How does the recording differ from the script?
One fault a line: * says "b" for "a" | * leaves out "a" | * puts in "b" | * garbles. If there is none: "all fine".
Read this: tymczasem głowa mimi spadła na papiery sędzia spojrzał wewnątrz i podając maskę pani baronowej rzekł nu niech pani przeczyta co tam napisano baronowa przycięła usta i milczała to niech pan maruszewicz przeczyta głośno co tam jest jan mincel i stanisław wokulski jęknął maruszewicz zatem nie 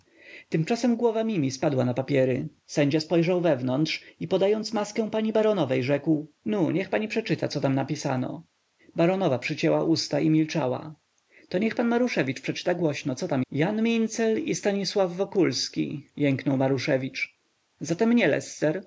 * leaves out "jest"